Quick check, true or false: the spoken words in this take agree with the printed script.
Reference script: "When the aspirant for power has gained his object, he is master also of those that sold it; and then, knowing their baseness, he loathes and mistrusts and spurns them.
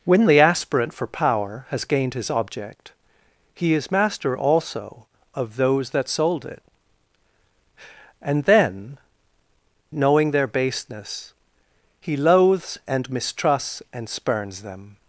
true